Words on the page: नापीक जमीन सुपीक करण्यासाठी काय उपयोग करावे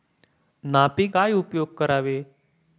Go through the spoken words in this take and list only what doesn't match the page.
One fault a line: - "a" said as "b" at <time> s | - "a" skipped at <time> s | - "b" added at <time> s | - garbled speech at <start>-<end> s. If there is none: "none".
- "जमीन सुपीक करण्यासाठी" skipped at 1.1 s